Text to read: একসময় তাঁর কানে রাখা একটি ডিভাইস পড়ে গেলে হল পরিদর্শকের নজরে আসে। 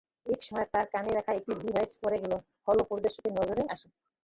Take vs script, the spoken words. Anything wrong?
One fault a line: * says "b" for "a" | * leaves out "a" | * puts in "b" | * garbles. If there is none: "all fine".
all fine